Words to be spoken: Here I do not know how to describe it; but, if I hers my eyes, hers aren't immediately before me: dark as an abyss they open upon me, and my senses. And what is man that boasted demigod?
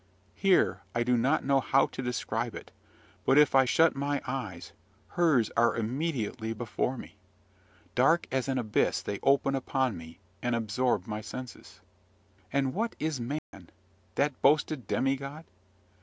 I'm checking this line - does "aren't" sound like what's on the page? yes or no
no